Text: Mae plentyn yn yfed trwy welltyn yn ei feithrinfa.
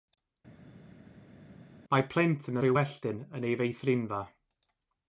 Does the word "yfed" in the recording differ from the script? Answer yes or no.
yes